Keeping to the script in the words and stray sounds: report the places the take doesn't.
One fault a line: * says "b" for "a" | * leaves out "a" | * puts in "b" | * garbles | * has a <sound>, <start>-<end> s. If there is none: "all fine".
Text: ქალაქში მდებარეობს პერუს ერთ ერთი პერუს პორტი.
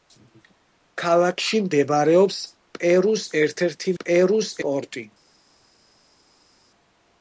all fine